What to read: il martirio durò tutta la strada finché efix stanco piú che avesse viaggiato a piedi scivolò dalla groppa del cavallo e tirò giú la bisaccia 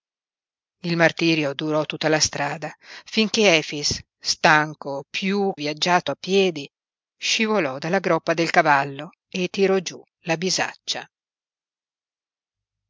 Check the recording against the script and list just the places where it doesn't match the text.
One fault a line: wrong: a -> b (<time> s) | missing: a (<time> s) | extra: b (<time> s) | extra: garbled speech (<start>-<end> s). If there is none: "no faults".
missing: che avesse (5.5 s)